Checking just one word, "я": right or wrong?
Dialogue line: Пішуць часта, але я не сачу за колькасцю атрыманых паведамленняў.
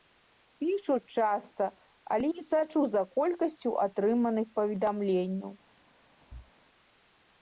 wrong